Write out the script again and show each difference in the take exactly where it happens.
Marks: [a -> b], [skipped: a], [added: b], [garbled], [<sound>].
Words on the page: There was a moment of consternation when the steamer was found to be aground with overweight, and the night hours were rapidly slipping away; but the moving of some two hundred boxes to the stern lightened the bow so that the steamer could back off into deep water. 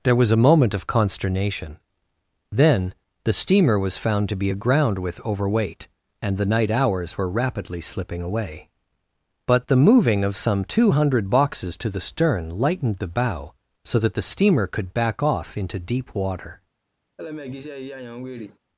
There was a moment of consternation [when -> then] the steamer was found to be aground with overweight, and the night hours were rapidly slipping away; but the moving of some two hundred boxes to the stern lightened the bow so that the steamer could back off into deep water. [laugh]